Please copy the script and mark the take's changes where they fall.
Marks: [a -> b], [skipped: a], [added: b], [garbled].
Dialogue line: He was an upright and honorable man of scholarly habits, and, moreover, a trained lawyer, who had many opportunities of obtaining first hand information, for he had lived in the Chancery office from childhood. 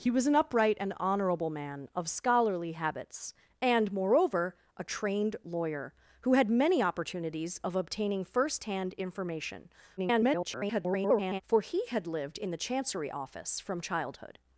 He was an upright and honorable man of scholarly habits, and, moreover, a trained lawyer, who had many opportunities of obtaining first hand information, [garbled] for he had lived in the Chancery office from childhood.